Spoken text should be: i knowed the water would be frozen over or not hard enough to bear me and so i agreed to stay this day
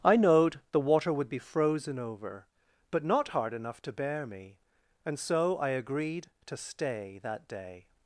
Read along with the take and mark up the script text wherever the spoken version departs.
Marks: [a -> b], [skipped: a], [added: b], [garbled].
i knowed the water would be frozen over [or -> but] not hard enough to bear me and so i agreed to stay [this -> that] day